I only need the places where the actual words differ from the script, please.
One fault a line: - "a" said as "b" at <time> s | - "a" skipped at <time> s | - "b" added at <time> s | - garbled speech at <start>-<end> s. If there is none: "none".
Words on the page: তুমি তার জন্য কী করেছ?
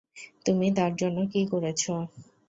none